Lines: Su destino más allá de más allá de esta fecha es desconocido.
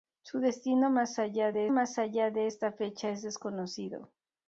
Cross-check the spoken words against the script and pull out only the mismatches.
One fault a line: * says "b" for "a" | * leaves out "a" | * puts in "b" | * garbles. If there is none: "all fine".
all fine